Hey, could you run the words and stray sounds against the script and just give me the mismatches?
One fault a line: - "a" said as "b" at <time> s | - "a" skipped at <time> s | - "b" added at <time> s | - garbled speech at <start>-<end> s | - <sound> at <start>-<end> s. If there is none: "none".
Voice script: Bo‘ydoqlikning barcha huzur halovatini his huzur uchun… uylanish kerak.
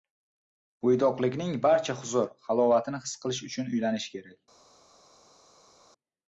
- "huzur" said as "qilish" at 3.3 s